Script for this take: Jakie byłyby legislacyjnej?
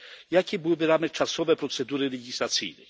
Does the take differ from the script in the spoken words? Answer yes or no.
yes